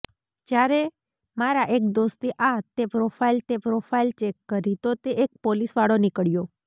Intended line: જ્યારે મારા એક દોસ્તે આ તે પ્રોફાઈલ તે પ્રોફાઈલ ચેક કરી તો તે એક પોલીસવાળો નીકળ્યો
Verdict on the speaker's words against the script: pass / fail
pass